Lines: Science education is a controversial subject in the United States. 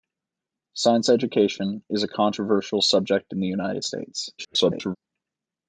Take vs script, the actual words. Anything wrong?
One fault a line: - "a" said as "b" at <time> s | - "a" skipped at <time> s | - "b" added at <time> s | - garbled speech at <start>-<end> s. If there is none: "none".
- garbled speech at 4.4-5.0 s